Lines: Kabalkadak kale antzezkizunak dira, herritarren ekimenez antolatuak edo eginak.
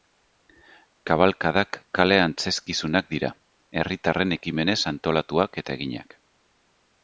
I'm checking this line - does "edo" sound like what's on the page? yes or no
no